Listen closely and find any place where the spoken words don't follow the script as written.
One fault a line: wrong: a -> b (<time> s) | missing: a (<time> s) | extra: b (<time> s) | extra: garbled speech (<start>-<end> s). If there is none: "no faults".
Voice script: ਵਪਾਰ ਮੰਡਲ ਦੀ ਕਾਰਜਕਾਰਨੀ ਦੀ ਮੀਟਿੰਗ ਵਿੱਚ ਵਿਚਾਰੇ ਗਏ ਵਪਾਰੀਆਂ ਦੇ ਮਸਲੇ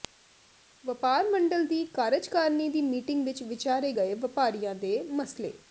no faults